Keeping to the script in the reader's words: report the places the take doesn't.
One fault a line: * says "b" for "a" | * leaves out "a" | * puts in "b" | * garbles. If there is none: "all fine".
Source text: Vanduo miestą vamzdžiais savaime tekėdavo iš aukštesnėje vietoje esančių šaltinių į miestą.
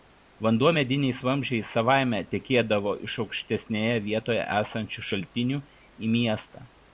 * says "mediniais" for "miestą"